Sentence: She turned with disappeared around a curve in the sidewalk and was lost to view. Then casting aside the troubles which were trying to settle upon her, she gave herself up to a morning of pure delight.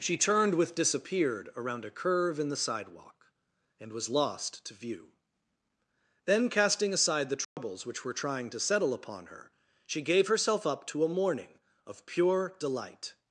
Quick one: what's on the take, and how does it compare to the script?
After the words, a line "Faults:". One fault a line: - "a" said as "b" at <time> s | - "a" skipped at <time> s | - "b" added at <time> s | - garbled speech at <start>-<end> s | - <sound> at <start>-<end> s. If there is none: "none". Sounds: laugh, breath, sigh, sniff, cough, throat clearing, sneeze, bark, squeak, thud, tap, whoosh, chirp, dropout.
She turned with disappeared around a curve in the sidewalk and was lost to view. Then casting aside the troubles which were trying to settle upon her, she gave herself up to a morning of pure delight.
Faults:
- dropout at 7.4-7.6 s